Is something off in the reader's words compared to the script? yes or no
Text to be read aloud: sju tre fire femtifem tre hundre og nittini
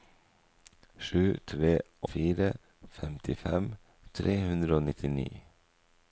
no